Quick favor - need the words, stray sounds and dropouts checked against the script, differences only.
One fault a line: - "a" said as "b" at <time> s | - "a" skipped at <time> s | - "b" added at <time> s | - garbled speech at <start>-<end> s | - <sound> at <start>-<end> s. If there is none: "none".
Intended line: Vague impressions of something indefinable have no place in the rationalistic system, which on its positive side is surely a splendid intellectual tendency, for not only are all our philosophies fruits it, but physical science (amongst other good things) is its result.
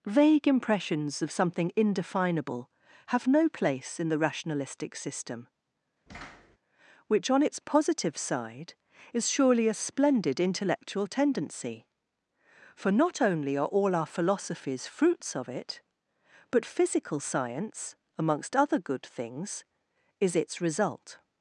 - thud at 6.1-6.6 s
- "of" added at 15.3 s